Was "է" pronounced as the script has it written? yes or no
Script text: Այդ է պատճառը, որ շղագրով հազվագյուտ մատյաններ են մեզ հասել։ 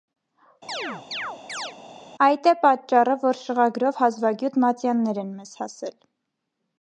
yes